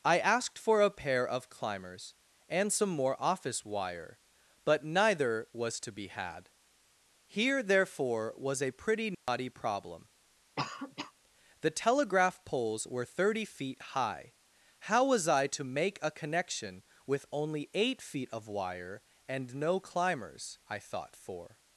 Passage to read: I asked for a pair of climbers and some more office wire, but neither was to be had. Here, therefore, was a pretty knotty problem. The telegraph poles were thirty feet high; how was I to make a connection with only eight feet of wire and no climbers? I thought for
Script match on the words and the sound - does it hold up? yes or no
no